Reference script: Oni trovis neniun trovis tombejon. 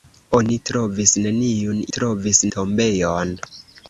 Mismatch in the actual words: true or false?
false